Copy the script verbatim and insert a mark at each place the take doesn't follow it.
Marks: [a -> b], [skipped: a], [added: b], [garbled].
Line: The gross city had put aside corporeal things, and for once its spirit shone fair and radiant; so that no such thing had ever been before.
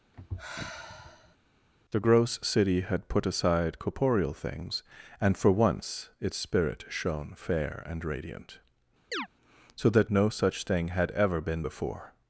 The gross city had put aside corporeal things, and for once its spirit shone fair and radiant; so that no such thing had ever been before.